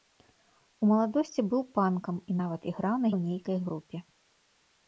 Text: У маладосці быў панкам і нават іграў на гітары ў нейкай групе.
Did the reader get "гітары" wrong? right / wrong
wrong